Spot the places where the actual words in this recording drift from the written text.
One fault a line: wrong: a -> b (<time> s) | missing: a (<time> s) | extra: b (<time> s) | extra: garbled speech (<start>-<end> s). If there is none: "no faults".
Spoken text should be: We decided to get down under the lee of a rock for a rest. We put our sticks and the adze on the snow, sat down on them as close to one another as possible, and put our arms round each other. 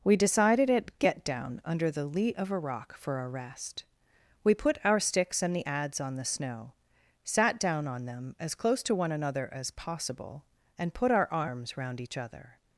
wrong: to -> at (0.7 s)